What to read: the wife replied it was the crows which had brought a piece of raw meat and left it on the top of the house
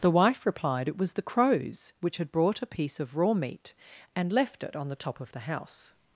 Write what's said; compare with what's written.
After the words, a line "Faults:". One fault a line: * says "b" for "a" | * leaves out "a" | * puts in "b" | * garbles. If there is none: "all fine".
the wife replied it was the crows which had brought a piece of raw meat and left it on the top of the house
Faults:
all fine